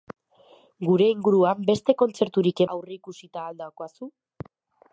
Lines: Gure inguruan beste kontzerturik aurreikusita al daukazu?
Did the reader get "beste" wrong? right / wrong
right